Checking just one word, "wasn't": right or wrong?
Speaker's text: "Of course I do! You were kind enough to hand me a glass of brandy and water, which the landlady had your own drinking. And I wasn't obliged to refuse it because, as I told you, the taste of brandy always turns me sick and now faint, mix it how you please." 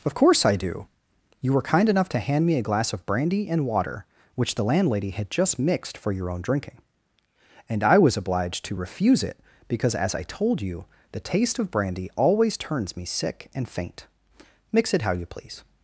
wrong